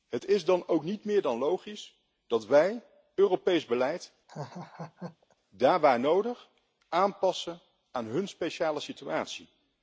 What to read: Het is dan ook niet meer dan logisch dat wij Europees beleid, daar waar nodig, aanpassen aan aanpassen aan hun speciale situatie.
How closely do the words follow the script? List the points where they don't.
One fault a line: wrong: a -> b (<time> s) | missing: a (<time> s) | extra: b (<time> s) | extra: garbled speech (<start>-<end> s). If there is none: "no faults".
missing: aanpassen aan (8.0 s)